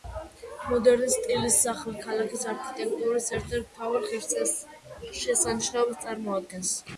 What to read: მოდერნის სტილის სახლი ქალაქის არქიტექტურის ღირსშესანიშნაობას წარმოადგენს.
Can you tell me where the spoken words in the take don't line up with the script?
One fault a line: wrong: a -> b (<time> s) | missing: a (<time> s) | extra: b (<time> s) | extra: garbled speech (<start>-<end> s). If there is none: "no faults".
extra: ერთ ერთ მთავარ (3.4 s)